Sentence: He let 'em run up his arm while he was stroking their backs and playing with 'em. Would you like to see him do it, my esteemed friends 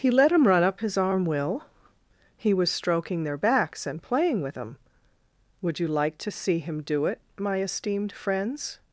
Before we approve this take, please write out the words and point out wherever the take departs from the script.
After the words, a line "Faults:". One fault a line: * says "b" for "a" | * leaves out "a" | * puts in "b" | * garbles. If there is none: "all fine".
He let 'em run up his arm will he was stroking their backs and playing with 'em. Would you like to see him do it, my esteemed friends
Faults:
* says "will" for "while"